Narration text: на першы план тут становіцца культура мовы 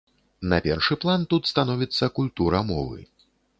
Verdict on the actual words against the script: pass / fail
pass